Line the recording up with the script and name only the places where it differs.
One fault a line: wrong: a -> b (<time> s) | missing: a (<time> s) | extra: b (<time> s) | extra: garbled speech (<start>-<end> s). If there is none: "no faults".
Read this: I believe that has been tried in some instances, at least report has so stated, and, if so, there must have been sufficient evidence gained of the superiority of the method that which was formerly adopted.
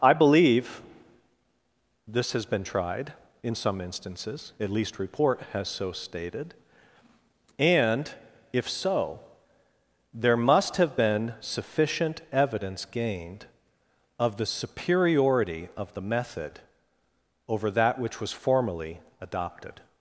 wrong: that -> this (2.1 s)
extra: over (17.5 s)